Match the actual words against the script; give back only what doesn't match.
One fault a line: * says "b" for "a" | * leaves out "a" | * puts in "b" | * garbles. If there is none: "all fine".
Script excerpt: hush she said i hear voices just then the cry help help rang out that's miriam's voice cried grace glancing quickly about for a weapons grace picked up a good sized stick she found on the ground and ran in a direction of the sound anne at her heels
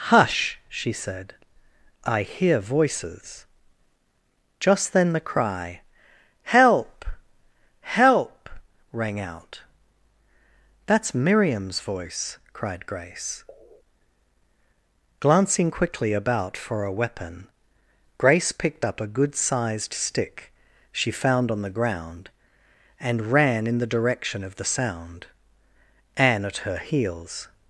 * says "weapon" for "weapons"
* says "the" for "a"